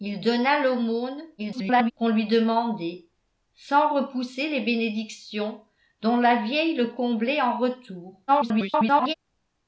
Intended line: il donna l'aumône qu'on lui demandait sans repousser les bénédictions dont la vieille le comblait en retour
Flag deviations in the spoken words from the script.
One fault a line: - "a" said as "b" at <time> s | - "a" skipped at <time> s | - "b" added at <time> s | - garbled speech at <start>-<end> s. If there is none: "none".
- garbled speech at 1.4-1.9 s
- garbled speech at 8.3-9.1 s